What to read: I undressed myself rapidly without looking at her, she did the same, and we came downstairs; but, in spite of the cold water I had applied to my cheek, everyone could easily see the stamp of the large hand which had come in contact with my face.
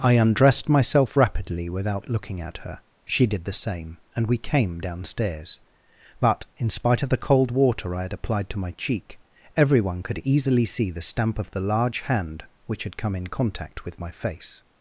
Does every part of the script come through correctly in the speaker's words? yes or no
yes